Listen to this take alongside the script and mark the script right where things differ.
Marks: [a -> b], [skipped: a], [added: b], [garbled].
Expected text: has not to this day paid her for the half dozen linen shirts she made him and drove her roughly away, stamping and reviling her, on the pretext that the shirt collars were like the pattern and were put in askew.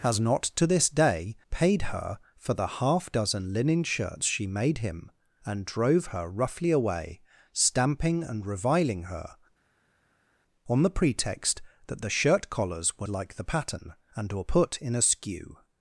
has not to this day paid her for the half dozen linen shirts she made him and drove her roughly away, stamping and reviling her, on the pretext that the shirt collars were like the pattern and were put in askew.